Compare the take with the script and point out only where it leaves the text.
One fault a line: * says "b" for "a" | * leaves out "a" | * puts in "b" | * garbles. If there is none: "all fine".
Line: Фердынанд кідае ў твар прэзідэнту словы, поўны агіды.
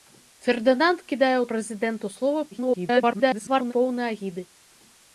* leaves out "твар"
* garbles